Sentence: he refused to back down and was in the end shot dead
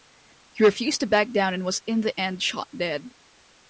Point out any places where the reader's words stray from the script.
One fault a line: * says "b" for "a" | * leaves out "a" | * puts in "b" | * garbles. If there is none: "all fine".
all fine